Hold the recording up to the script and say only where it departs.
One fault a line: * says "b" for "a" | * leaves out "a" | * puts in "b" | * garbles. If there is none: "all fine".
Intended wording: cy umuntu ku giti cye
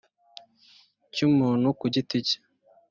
all fine